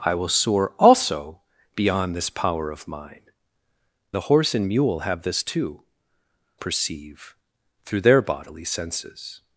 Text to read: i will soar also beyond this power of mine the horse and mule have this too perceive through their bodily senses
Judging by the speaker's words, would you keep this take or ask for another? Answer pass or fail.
pass